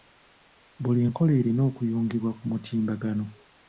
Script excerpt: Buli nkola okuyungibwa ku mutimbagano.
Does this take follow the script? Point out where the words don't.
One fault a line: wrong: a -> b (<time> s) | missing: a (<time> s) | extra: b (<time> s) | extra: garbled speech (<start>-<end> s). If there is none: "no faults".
extra: erina (1.4 s)